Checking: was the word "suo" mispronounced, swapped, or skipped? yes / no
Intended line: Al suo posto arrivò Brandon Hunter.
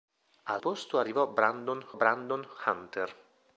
yes